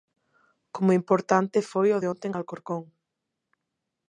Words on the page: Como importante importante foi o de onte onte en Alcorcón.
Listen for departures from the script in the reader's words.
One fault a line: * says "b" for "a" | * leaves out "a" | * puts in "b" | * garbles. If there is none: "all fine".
* leaves out "importante"
* leaves out "onte"